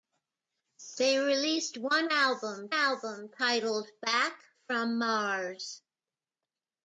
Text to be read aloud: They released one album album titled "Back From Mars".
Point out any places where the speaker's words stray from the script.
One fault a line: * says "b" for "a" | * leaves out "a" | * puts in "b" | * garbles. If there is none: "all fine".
all fine